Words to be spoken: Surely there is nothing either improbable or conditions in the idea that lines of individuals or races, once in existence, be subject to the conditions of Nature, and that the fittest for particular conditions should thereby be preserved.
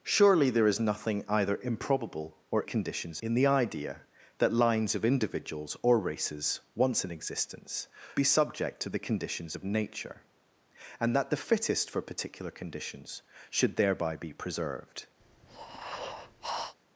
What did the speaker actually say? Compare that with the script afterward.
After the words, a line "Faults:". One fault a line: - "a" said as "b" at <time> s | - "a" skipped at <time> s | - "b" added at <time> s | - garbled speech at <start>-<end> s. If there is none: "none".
Surely there is nothing either improbable or conditions in the idea that lines of individuals or races, once in existence, be subject to the conditions of Nature, and that the fittest for particular conditions should thereby be preserved.
Faults:
none